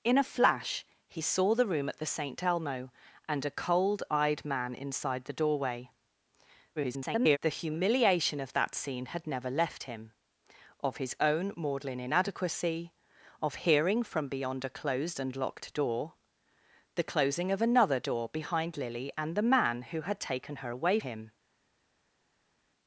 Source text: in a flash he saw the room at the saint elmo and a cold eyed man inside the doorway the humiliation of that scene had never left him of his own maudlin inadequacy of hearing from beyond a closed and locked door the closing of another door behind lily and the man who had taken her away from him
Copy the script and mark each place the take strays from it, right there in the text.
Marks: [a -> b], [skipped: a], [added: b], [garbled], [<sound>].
in a flash he saw the room at the saint elmo and a cold eyed man inside the doorway [garbled] the humiliation of that scene had never left him of his own maudlin inadequacy of hearing from beyond a closed and locked door the closing of another door behind lily and the man who had taken her away [skipped: from] him